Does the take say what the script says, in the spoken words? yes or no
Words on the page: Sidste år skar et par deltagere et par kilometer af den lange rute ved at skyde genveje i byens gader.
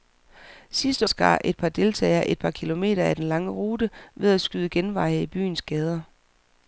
no